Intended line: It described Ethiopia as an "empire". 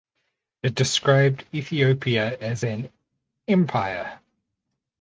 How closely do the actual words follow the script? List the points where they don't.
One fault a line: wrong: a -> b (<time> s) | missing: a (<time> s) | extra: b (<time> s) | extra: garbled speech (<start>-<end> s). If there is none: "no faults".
no faults